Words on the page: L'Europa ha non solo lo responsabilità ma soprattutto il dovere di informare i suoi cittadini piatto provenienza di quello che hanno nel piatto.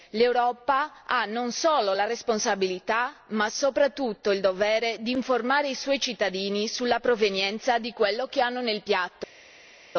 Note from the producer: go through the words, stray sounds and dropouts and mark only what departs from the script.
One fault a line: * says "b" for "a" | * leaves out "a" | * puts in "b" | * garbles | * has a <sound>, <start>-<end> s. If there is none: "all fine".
* says "la" for "lo"
* says "sulla" for "piatto"